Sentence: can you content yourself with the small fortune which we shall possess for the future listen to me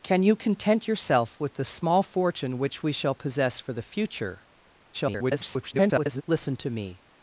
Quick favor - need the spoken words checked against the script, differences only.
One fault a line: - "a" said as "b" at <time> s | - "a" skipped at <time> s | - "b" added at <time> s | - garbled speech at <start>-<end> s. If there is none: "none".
- garbled speech at 4.9-6.2 s